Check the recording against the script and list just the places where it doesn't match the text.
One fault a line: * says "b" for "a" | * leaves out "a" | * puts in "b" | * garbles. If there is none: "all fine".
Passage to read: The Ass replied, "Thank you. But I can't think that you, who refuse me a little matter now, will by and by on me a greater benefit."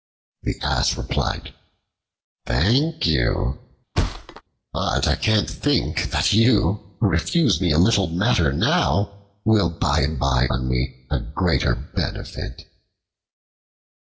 all fine